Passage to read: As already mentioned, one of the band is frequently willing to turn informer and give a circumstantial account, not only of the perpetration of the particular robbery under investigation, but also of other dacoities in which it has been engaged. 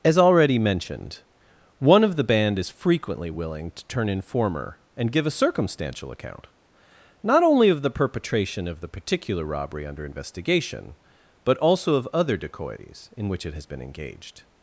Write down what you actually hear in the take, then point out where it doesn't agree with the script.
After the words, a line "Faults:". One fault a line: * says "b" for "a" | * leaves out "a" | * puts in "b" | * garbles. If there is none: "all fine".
As already mentioned, one of the band is frequently willing to turn informer and give a circumstantial account, not only of the perpetration of the particular robbery under investigation, but also of other dacoities in which it has been engaged.
Faults:
all fine